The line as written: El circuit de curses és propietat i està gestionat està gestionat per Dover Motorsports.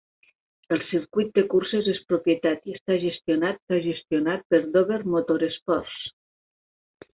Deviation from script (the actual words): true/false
false